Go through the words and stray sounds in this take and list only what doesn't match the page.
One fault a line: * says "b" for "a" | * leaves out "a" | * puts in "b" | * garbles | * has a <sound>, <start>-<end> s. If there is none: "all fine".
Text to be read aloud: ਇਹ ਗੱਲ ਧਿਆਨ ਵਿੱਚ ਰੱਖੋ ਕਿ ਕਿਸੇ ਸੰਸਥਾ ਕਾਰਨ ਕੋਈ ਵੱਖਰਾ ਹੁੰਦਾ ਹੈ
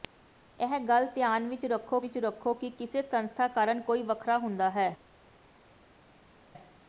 * puts in "ਵਿੱਚ ਰੱਖੋ"